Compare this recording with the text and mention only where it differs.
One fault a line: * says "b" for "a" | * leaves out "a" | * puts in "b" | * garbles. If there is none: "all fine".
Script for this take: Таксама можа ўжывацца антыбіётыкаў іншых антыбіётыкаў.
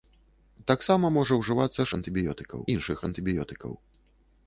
all fine